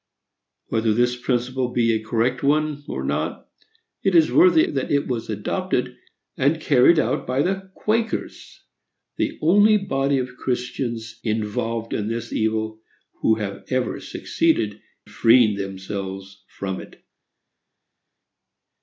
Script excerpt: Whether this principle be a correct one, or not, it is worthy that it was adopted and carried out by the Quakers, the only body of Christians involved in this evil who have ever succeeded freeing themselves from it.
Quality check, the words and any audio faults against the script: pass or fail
pass